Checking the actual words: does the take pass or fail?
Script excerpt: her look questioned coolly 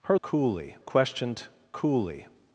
fail